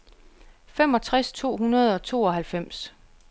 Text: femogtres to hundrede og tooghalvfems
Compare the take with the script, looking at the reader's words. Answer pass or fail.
pass